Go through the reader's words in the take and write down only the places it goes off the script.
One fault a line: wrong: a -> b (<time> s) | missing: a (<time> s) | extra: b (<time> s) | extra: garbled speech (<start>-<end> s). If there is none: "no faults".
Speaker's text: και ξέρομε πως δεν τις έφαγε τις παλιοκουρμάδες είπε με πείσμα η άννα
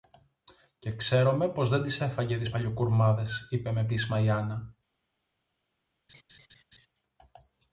no faults